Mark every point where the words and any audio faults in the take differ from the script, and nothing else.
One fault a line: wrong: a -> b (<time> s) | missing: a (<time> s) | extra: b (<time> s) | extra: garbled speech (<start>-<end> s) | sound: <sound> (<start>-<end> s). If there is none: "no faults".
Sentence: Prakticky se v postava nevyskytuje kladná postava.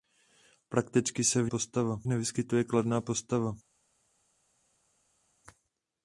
no faults